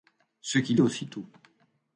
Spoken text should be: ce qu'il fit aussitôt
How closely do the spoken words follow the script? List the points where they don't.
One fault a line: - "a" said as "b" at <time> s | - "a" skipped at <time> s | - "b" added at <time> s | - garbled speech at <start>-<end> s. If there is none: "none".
- "fit" skipped at 0.8 s